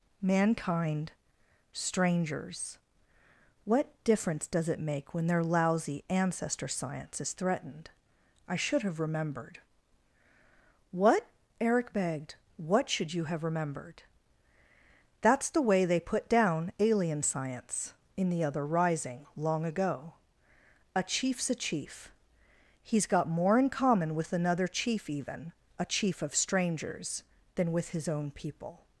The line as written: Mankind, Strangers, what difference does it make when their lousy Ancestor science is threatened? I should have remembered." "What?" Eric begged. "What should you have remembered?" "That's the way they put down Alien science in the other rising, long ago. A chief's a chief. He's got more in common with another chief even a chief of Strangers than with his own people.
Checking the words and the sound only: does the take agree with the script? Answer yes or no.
yes